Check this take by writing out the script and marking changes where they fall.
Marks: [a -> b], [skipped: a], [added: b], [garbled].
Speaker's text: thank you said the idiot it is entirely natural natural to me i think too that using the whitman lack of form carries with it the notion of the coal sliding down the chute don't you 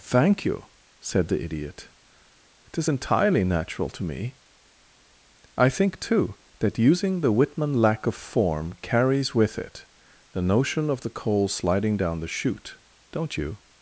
thank you said the idiot it is entirely natural [skipped: natural] to me i think too that using the whitman lack of form carries with it the notion of the coal sliding down the chute don't you